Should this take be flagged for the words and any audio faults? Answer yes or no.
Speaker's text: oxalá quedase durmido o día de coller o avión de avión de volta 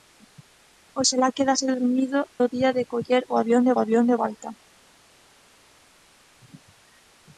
no